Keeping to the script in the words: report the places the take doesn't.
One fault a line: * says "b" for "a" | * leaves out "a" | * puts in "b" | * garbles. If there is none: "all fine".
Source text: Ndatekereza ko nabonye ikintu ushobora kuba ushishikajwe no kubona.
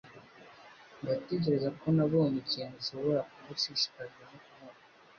all fine